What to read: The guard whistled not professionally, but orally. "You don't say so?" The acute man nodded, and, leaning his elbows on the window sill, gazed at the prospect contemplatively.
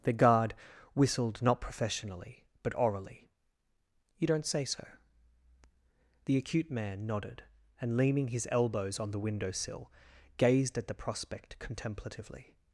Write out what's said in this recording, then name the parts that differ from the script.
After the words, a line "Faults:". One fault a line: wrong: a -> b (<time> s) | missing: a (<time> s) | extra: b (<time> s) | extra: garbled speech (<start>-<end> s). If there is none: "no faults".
The guard whistled not professionally, but orally. "You don't say so?" The acute man nodded, and, leaning his elbows on the window sill, gazed at the prospect contemplatively.
Faults:
no faults